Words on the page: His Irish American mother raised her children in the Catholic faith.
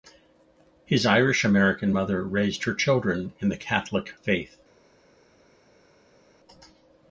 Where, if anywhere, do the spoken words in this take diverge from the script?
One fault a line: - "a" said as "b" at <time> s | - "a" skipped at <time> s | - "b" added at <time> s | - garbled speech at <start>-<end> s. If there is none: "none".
none